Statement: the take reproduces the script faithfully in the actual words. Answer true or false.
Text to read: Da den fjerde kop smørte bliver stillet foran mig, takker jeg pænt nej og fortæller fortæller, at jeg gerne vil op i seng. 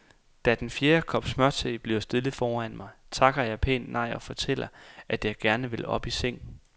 false